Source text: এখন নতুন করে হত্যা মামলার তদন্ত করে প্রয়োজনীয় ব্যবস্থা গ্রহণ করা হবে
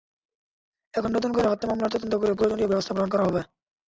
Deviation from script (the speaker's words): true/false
false